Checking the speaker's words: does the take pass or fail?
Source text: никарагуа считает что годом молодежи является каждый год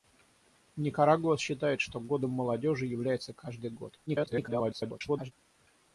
fail